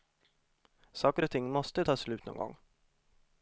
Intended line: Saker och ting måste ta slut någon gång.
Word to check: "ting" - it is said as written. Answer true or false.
true